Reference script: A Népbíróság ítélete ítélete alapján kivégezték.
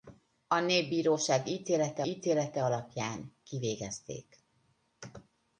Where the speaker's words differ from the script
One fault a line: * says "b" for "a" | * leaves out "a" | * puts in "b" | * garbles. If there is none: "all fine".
all fine